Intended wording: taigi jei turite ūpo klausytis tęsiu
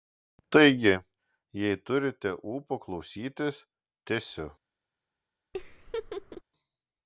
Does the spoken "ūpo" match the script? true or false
true